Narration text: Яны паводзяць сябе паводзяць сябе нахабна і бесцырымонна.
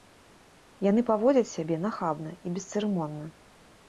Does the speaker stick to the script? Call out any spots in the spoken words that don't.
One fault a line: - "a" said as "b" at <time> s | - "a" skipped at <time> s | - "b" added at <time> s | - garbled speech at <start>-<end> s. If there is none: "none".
- "паводзяць сябе" skipped at 1.8 s